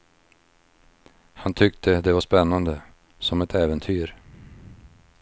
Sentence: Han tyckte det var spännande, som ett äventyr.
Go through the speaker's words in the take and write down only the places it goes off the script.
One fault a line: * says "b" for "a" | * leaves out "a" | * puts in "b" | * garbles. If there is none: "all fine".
all fine